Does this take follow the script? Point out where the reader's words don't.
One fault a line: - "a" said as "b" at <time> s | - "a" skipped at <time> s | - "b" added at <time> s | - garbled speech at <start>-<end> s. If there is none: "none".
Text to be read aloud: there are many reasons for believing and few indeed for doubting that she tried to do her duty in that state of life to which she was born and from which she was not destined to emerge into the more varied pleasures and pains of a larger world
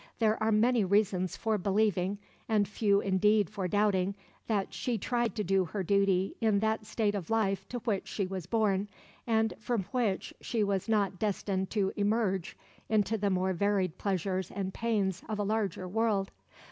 none